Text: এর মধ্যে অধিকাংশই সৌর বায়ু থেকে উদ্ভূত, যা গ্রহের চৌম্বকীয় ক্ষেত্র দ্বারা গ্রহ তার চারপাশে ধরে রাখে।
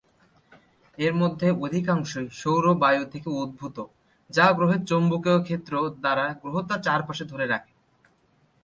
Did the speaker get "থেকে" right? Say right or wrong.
right